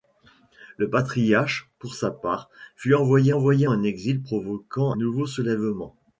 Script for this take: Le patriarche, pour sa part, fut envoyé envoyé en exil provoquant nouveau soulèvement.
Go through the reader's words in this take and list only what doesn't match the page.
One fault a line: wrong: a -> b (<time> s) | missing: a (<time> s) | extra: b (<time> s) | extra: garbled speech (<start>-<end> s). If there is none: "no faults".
no faults